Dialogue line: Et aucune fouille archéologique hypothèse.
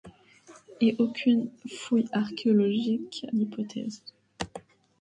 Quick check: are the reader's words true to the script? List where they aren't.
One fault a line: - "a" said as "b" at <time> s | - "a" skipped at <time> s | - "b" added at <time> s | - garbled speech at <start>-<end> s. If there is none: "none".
none